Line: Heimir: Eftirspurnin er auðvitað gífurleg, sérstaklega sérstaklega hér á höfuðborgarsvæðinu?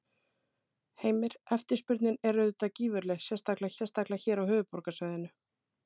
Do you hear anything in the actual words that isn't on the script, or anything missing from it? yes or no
no